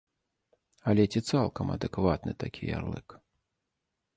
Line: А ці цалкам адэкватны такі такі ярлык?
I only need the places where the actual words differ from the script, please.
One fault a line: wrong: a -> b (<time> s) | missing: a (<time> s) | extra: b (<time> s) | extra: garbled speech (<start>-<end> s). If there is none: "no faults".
wrong: А -> Але (0.9 s)
missing: такі (2.6 s)